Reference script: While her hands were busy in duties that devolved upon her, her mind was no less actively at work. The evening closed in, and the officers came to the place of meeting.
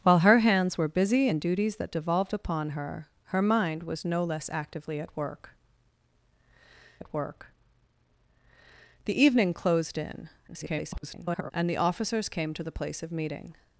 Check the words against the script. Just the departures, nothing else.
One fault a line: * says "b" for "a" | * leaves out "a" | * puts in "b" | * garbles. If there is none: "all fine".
* puts in "at work"
* garbles